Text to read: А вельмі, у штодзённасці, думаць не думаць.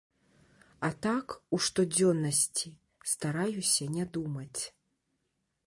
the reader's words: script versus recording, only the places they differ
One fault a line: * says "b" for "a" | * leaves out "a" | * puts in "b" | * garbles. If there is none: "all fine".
* says "так" for "вельмі"
* says "стараюся" for "думаць"